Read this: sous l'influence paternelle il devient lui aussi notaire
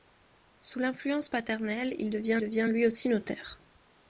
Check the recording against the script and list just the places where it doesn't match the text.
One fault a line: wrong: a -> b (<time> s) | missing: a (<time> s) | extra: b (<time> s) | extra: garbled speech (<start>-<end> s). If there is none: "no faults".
extra: devient (2.4 s)